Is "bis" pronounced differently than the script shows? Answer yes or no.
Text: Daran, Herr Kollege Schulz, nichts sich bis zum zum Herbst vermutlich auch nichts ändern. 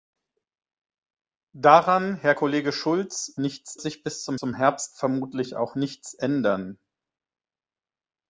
no